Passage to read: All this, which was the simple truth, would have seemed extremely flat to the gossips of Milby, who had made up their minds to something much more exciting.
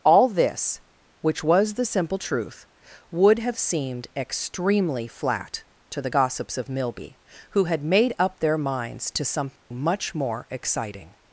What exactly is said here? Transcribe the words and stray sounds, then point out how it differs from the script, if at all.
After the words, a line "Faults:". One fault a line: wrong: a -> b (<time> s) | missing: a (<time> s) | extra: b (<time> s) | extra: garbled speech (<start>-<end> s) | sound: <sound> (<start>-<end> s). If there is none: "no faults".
All this, which was the simple truth, would have seemed extremely flat to the gossips of Milby, who had made up their minds to something much more exciting.
Faults:
sound: dropout (9.6-9.7 s)